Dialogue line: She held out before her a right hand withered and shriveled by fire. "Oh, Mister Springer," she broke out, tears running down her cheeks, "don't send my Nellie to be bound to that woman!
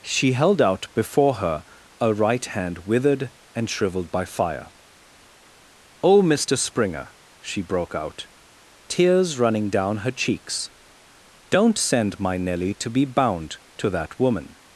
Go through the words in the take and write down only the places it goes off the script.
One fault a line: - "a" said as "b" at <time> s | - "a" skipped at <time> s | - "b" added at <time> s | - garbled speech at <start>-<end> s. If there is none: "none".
none